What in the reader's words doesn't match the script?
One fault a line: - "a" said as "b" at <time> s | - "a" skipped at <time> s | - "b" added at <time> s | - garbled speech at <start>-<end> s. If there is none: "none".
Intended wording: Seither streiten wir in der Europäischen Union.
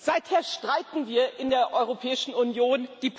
none